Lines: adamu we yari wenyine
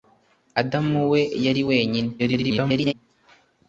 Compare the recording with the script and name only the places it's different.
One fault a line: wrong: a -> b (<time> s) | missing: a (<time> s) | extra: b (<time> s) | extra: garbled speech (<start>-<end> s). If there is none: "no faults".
extra: garbled speech (2.2-2.9 s)